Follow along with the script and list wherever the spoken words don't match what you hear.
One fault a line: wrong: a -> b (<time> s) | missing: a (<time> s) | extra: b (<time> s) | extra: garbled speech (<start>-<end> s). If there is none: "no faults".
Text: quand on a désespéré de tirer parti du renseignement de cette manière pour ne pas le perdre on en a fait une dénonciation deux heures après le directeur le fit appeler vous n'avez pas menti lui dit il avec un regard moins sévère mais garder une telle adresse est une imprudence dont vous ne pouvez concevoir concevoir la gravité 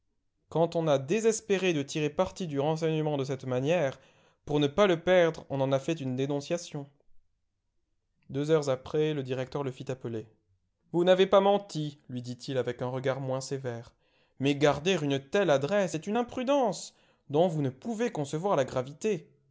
missing: concevoir (18.5 s)